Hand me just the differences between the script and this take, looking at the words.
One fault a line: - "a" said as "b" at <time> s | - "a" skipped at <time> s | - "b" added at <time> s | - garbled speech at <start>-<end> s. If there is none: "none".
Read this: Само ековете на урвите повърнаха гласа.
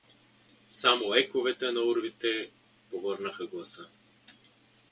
none